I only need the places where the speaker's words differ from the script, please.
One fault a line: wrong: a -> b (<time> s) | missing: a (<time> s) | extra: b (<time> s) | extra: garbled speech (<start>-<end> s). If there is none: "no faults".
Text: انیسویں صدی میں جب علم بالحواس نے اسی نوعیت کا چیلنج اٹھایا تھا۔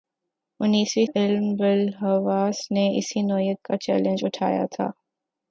missing: صدی میں جب (1.1 s)